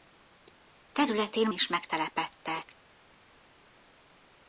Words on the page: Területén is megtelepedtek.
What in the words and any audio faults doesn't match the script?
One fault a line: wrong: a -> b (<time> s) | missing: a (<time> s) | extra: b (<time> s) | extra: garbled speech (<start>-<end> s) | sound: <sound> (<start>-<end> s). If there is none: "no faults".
no faults